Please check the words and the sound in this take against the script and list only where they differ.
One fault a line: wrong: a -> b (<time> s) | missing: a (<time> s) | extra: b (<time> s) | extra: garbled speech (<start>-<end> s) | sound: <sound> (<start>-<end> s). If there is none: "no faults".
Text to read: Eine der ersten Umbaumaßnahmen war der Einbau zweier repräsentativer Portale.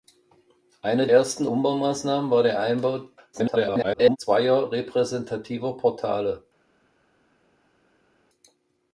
missing: der (1.1 s)
extra: garbled speech (3.3-4.2 s)